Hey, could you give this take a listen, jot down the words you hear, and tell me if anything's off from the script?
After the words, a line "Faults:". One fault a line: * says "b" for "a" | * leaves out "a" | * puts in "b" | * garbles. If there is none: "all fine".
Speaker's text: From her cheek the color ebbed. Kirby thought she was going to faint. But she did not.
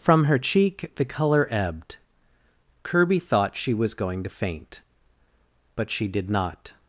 From her cheek the color ebbed. Kirby thought she was going to faint. But she did not.
Faults:
all fine